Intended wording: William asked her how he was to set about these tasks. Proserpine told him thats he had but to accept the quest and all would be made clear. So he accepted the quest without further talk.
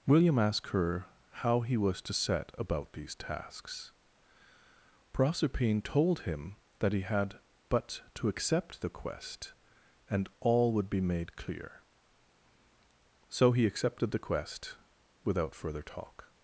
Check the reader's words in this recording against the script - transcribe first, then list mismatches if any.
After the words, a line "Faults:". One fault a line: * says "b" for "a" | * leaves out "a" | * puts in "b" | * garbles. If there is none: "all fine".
William asked her how he was to set about these tasks. Proserpine told him that he had but to accept the quest and all would be made clear. So he accepted the quest without further talk.
Faults:
* says "that" for "thats"